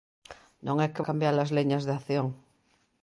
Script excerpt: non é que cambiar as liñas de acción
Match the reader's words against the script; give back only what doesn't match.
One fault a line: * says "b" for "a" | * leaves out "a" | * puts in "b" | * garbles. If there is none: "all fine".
all fine